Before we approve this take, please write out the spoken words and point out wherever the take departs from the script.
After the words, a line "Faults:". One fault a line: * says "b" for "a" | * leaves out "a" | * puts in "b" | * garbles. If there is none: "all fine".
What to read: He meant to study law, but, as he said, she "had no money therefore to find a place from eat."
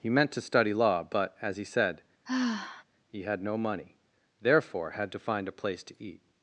He meant to study law, but, as he said, he "had no money therefore had to find a place to eat."
Faults:
* says "he" for "she"
* puts in "had"
* says "to" for "from"